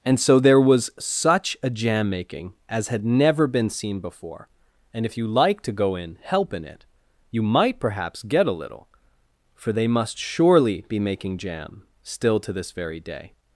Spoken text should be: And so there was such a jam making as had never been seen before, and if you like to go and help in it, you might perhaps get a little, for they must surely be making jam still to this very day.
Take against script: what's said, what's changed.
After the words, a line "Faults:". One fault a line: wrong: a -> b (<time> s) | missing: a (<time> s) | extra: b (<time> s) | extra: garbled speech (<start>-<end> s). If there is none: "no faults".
And so there was such a jam making as had never been seen before, and if you like to go in help in it, you might perhaps get a little, for they must surely be making jam still to this very day.
Faults:
wrong: and -> in (6.0 s)